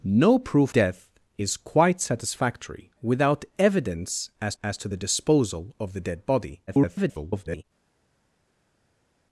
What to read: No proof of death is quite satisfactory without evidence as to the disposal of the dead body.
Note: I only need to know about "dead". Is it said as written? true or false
true